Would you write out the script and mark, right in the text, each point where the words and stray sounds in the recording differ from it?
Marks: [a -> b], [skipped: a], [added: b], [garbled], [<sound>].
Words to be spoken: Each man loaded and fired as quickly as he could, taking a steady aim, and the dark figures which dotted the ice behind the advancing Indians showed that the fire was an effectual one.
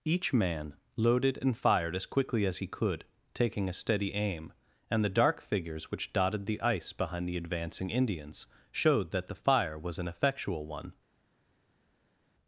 Each man loaded and fired as quickly as he could, taking a steady aim, and the dark figures which dotted the ice behind the advancing Indians showed that the fire was an effectual one.